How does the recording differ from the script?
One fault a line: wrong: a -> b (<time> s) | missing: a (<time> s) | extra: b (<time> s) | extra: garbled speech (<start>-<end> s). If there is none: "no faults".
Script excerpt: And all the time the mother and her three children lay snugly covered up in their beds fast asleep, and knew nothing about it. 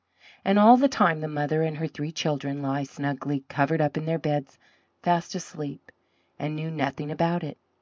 no faults